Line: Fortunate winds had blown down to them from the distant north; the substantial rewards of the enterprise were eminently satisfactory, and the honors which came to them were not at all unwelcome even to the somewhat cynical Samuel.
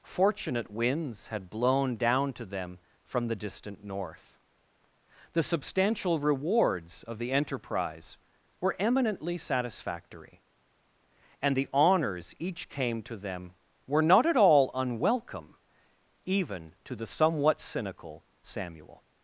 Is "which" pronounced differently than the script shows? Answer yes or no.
yes